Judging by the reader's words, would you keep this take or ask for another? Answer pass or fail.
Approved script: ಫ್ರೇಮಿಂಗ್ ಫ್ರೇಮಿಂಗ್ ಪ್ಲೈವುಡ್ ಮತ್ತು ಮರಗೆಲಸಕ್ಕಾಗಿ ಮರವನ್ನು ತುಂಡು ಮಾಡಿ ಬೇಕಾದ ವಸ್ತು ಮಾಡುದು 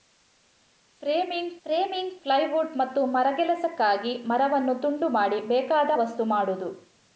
pass